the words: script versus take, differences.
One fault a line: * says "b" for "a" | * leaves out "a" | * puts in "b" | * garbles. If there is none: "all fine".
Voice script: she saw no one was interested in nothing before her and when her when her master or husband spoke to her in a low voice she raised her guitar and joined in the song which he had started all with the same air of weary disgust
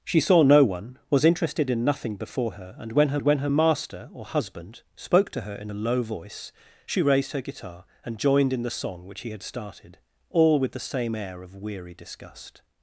all fine